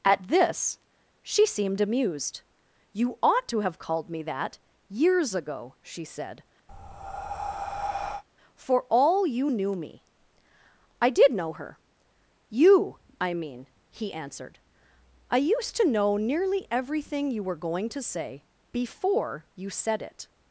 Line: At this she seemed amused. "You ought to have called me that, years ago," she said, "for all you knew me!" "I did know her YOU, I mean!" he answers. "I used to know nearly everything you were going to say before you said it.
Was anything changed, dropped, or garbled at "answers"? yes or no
yes